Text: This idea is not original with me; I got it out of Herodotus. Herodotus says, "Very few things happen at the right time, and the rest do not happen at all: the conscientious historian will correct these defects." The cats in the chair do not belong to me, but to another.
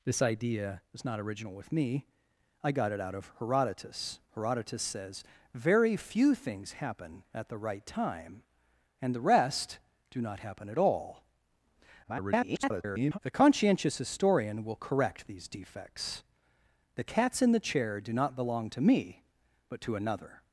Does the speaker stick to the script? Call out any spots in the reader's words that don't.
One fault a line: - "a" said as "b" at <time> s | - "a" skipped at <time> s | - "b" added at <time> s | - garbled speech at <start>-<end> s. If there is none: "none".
- garbled speech at 12.0-13.2 s